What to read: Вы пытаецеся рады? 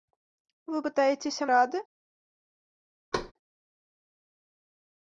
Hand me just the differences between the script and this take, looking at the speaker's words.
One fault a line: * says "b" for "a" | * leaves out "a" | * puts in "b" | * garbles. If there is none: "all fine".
all fine